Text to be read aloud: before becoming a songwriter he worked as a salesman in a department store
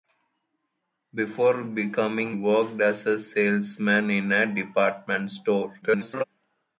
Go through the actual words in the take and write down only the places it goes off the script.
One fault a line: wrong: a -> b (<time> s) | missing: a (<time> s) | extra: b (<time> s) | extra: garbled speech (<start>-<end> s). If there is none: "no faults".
missing: a songwriter he (2.4 s)
extra: garbled speech (5.8-6.2 s)